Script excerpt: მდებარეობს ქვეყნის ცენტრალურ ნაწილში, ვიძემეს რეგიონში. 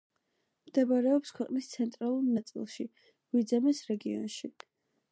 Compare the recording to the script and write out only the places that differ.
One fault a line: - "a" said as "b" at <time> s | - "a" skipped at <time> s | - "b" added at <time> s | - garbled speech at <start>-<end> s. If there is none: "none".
none